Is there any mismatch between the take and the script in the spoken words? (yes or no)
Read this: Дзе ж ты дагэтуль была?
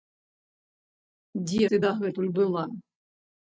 yes